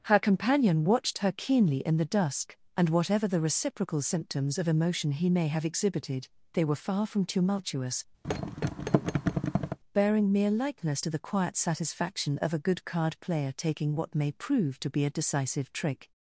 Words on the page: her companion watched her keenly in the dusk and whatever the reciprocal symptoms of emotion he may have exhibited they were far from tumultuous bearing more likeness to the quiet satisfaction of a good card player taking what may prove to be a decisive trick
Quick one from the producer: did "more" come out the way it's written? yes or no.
no